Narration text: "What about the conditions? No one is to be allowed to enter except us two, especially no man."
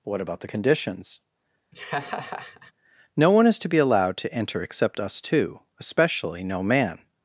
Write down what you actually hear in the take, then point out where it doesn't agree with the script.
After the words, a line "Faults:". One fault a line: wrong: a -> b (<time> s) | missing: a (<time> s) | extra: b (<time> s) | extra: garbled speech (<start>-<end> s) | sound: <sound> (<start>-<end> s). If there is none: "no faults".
"What about the conditions? No one is to be allowed to enter except us two, especially no man."
Faults:
sound: laugh (1.7-2.7 s)